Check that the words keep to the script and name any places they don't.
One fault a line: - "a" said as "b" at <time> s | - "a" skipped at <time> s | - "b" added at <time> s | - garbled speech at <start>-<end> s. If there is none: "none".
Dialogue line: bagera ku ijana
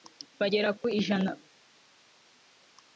none